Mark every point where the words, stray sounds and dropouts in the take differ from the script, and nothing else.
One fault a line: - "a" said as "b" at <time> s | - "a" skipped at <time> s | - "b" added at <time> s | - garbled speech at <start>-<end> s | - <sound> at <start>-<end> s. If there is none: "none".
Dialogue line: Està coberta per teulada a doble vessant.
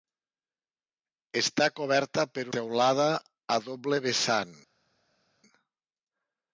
none